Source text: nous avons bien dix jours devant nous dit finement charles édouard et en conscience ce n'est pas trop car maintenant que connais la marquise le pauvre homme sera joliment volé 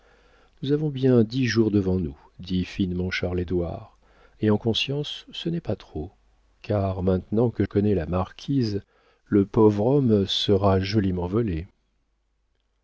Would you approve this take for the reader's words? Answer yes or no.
yes